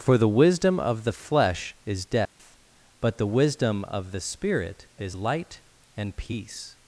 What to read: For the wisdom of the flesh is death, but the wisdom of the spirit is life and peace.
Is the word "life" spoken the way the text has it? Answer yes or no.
no